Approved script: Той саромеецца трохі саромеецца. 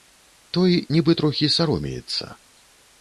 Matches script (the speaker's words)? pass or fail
fail